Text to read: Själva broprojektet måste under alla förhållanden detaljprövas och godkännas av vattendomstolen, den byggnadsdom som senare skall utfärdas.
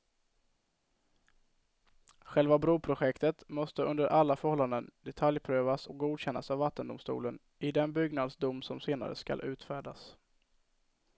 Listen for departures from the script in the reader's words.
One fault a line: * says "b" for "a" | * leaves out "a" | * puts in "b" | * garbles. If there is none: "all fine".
* puts in "i"